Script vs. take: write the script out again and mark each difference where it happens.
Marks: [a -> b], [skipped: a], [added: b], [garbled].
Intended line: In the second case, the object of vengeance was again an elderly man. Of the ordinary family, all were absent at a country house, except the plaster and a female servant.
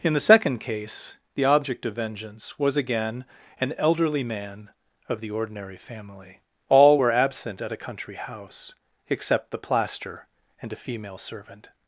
In the second case, the object of vengeance was again an elderly man. Of the ordinary family, all were absent at a country house, except the plaster and a female servant.